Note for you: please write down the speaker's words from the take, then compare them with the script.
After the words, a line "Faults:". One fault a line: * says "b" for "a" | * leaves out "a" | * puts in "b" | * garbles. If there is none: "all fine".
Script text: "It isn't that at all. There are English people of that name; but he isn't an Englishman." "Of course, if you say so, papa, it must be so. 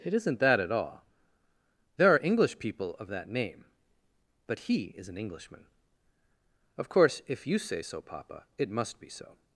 "It isn't that at all. There are English people of that name; but he is an Englishman." "Of course, if you say so, papa, it must be so.
Faults:
* says "is" for "isn't"